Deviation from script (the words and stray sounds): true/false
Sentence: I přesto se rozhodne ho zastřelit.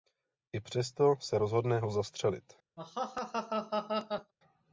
true